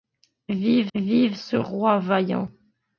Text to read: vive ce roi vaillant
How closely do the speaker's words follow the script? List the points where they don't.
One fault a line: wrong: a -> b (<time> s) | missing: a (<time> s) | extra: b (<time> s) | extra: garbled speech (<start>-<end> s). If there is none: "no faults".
extra: vive (0.9 s)